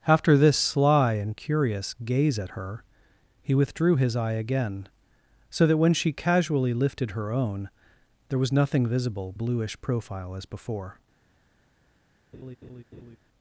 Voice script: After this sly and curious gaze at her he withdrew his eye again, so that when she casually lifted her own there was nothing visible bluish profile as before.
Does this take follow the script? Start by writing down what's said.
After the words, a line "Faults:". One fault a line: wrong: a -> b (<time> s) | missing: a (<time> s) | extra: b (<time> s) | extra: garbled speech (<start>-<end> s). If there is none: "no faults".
After this sly and curious gaze at her he withdrew his eye again, so that when she casually lifted her own there was nothing visible bluish profile as before.
Faults:
no faults